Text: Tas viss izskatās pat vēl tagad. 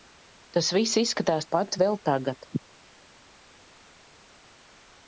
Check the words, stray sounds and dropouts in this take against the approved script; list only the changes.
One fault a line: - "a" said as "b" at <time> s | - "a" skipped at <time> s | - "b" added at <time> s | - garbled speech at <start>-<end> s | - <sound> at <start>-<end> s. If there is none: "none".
none